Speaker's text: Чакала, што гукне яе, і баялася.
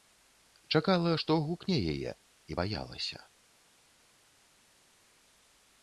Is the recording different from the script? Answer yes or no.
no